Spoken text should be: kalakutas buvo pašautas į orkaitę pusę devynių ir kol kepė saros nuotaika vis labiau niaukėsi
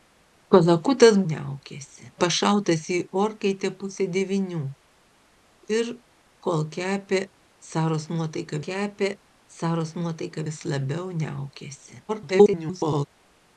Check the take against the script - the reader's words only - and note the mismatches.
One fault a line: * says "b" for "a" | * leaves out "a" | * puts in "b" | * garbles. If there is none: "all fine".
* says "niaukėsi" for "buvo"
* puts in "kepė saros nuotaika"
* garbles